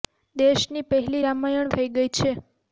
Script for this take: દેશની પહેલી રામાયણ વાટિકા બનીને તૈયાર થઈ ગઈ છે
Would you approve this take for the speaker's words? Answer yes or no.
no